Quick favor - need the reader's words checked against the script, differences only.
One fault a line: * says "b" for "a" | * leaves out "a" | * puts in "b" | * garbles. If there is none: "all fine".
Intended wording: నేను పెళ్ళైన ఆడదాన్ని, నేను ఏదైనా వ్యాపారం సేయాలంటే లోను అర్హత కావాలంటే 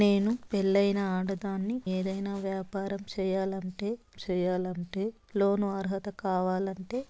* leaves out "నేను"
* puts in "సేయాలంటే"